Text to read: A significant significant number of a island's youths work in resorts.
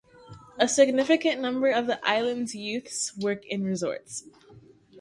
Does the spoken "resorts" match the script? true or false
true